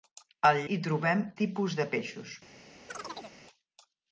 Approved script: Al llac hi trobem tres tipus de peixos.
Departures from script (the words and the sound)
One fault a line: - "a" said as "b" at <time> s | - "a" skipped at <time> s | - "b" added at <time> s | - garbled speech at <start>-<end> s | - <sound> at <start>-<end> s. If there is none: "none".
- "llac" skipped at 0.6 s
- "tres" skipped at 1.2 s
- chirp at 2.9-3.4 s